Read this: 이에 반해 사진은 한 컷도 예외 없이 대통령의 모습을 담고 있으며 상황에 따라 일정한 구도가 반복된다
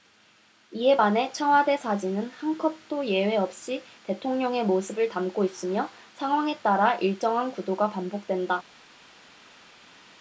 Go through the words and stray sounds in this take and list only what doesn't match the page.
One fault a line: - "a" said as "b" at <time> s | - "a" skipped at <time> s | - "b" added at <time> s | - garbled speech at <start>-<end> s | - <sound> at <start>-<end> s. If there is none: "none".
- "청와대" added at 1.3 s